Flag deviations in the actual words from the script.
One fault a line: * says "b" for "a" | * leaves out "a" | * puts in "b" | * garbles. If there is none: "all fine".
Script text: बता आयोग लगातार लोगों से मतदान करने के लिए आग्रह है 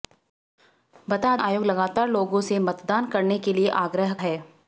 all fine